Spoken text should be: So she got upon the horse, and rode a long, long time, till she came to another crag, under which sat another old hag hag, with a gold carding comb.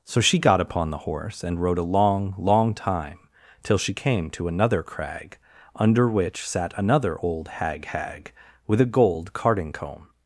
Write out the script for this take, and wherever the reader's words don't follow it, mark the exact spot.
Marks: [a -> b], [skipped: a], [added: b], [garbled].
So she got upon the horse, and rode a long, long time, till she came to another crag, under which sat another old hag hag, with a gold carding comb.